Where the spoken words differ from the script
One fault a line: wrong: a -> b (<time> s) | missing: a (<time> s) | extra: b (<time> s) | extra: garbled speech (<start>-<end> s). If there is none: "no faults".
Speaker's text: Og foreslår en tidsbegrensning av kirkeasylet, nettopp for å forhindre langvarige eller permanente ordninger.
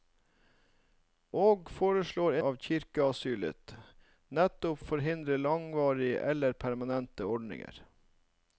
missing: en tidsbegrensning (2.4 s)
missing: for (4.8 s)